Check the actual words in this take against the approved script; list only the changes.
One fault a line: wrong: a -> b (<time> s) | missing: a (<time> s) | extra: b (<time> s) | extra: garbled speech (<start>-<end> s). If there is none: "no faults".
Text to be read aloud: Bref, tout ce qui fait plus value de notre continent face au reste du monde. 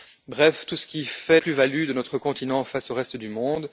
no faults